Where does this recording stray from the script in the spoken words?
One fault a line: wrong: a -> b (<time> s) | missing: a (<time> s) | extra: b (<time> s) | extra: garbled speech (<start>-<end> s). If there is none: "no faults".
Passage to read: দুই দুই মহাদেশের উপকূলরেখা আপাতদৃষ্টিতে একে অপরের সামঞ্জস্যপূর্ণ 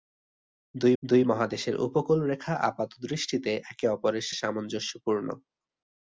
no faults